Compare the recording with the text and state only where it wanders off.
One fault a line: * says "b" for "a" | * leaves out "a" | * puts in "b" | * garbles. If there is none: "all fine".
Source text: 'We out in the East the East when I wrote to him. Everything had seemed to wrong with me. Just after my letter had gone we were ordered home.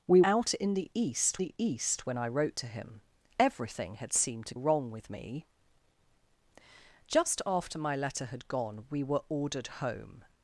all fine